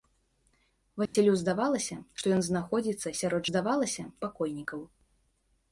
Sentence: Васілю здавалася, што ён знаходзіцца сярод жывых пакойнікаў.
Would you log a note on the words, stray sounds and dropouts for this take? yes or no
yes